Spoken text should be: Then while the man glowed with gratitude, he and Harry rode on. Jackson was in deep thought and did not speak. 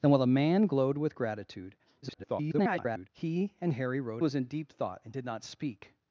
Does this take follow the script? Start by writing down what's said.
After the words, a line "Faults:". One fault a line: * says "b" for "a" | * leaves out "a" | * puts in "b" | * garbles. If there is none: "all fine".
Then while the man glowed with gratitude, [garbled] he and Harry rode was in deep thought and did not speak.
Faults:
* garbles
* leaves out "on Jackson"